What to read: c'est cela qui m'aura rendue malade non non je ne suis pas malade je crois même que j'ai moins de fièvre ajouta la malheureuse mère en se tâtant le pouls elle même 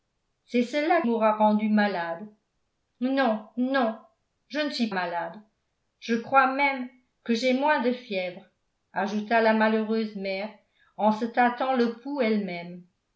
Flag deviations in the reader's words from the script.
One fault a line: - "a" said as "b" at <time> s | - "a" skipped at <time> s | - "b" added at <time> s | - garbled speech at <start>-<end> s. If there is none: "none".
- "qui" skipped at 1.0 s
- "pas" skipped at 4.9 s